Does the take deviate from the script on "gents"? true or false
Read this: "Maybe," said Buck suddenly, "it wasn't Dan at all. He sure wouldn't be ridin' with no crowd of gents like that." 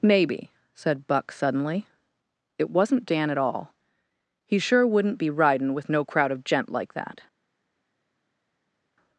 true